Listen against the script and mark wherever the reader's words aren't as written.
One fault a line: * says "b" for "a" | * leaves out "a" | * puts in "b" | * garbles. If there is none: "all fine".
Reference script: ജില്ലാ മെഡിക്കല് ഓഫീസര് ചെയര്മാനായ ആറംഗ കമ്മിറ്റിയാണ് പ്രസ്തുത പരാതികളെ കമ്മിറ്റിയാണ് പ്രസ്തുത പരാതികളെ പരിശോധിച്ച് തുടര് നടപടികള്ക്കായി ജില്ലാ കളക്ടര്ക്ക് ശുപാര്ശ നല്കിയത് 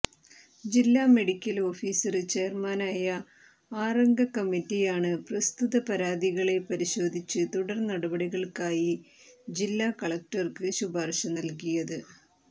* leaves out "കമ്മിറ്റിയാണ് പ്രസ്തുത പരാതികളെ"